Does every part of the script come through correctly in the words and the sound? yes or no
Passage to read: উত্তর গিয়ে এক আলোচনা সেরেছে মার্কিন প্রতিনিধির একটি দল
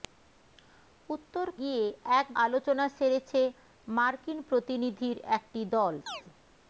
no